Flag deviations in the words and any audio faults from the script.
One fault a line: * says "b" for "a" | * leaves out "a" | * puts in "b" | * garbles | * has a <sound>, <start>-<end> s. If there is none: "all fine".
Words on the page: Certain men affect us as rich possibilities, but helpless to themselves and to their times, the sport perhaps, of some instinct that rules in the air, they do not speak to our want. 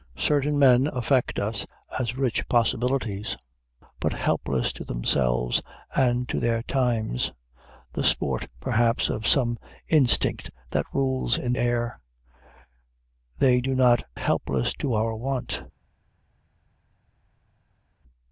* leaves out "the"
* says "helpless" for "speak"